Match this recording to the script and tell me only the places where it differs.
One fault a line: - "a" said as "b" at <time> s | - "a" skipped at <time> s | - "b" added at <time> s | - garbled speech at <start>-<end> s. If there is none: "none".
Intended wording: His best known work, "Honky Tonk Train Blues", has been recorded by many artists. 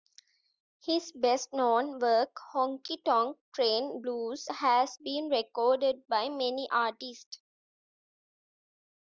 none